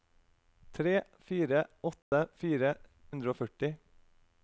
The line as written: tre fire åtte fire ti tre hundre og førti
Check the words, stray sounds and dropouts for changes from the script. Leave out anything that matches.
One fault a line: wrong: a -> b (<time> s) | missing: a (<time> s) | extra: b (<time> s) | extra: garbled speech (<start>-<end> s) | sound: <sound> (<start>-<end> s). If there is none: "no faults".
sound: dropout (2.0-2.1 s)
missing: ti tre (2.7 s)